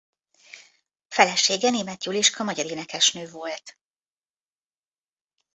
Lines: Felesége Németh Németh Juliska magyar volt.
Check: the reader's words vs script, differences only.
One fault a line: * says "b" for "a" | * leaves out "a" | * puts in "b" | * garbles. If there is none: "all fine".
* leaves out "Németh"
* puts in "énekesnő"